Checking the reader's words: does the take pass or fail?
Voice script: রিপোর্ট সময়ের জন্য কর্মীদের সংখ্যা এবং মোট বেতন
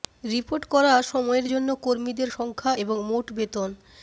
fail